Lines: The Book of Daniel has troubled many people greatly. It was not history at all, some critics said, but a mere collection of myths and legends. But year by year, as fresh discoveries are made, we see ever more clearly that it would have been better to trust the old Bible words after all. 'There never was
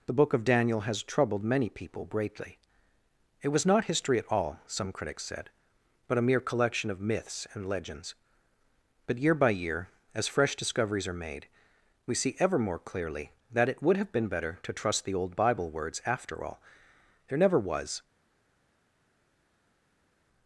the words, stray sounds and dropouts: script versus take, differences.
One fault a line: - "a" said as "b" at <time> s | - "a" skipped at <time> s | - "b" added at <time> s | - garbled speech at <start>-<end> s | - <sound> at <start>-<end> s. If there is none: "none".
none